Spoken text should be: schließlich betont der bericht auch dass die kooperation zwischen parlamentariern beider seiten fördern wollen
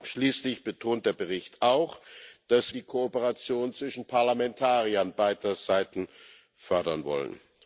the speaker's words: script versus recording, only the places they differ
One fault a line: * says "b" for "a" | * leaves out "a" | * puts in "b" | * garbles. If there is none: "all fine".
all fine